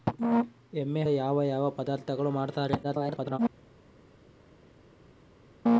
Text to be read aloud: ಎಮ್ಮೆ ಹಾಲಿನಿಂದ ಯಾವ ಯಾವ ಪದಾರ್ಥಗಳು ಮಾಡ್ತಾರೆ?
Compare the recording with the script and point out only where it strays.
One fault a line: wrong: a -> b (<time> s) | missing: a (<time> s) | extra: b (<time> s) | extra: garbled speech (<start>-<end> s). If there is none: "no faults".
missing: ಹಾಲಿನಿಂದ (1.0 s)
extra: garbled speech (2.8-3.4 s)